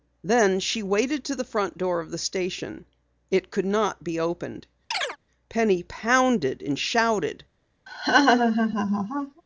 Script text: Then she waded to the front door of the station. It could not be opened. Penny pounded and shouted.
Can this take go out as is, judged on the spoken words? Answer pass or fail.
pass